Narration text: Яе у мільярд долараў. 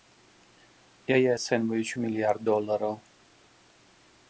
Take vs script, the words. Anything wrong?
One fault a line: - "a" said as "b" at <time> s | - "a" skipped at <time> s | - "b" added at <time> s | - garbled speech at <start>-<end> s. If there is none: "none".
- "ацэньваюць" added at 1.4 s